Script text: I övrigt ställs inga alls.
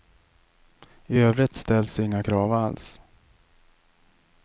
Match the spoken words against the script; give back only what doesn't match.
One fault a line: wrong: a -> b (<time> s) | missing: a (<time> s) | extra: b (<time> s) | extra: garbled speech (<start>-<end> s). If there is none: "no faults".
extra: krav (2.2 s)